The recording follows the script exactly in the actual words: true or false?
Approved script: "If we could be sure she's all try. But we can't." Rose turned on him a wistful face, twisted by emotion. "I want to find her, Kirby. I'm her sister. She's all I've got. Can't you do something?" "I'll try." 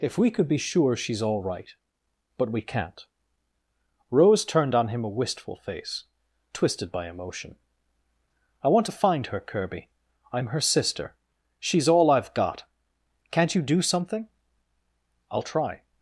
false